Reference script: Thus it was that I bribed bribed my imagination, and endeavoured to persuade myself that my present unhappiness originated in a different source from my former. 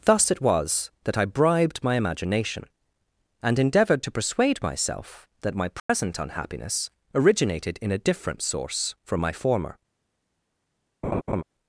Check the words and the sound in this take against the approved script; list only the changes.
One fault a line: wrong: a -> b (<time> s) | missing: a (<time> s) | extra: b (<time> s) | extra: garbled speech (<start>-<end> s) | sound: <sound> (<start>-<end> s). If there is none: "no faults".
missing: bribed (1.8 s)
sound: dropout (5.8-5.9 s)
sound: laugh (11.0-11.4 s)